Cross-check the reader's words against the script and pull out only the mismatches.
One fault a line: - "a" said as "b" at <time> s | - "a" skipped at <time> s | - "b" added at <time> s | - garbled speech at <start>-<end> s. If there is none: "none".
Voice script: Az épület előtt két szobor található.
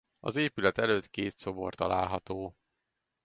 none